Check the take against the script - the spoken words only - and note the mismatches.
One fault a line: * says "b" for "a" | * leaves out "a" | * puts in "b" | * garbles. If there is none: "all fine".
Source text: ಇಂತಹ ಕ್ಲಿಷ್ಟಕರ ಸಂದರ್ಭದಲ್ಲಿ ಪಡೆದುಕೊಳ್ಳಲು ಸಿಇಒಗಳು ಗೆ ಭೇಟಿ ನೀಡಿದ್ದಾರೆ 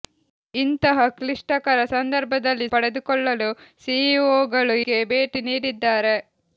all fine